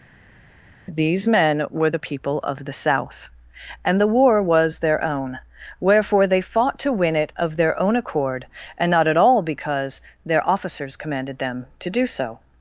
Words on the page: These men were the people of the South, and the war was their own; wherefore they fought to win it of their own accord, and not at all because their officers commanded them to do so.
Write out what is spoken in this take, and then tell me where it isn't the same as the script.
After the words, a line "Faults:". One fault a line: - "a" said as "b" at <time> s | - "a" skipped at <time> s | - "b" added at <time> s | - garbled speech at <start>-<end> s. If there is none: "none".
These men were the people of the South, and the war was their own; wherefore they fought to win it of their own accord, and not at all because their officers commanded them to do so.
Faults:
none